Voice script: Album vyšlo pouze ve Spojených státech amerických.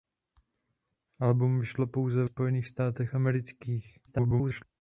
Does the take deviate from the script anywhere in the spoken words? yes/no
yes